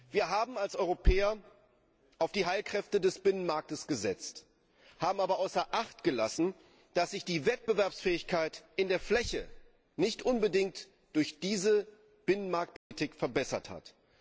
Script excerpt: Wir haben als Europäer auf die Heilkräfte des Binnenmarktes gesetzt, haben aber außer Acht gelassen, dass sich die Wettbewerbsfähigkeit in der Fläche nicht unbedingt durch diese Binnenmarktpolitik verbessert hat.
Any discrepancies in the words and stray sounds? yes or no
yes